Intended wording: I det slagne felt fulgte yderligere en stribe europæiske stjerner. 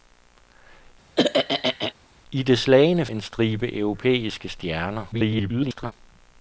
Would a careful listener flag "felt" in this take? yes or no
yes